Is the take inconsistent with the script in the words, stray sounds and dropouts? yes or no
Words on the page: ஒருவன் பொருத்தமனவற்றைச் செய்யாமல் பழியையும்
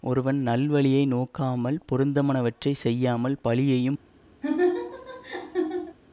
yes